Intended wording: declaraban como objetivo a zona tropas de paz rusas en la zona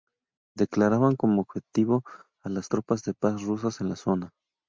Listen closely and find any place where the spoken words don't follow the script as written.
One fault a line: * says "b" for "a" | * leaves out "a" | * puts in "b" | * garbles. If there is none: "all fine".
* says "las" for "zona"